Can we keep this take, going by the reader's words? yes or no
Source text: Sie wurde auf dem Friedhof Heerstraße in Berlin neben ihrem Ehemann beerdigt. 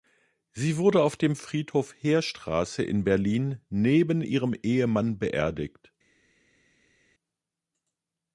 yes